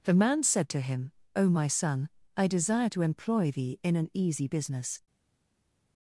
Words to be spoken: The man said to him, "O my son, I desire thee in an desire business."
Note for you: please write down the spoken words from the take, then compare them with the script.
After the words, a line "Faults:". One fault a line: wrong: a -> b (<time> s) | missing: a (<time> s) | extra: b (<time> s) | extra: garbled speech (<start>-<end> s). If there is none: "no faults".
The man said to him, "O my son, I desire to employ thee in an easy business."
Faults:
extra: to employ (2.9 s)
wrong: desire -> easy (4.1 s)